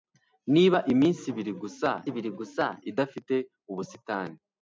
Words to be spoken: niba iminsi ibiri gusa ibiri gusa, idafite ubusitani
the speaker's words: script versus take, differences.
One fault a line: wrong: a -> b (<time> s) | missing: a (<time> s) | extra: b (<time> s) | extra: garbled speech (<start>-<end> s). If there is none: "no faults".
no faults